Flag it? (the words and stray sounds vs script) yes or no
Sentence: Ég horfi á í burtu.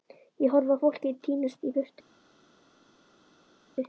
yes